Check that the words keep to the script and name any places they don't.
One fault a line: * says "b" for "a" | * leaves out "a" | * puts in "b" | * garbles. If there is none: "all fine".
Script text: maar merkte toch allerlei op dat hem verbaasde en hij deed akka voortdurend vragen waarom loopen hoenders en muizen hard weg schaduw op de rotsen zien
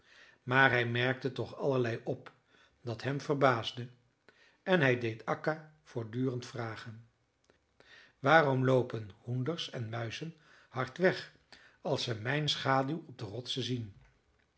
* puts in "hij"
* puts in "als ze mijn"